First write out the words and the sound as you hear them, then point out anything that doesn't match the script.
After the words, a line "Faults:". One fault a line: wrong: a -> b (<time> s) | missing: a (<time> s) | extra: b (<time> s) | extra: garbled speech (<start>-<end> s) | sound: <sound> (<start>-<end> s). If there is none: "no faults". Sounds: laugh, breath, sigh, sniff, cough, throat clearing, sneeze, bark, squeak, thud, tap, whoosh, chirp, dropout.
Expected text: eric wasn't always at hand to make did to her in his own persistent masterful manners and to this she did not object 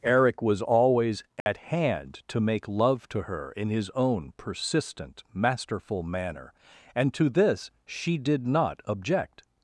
eric was always at hand to make love to her in his own persistent masterful manner and to this she did not object
Faults:
wrong: wasn't -> was (0.4 s)
sound: dropout (1.4-1.5 s)
wrong: did -> love (2.7 s)
wrong: manners -> manner (6.0 s)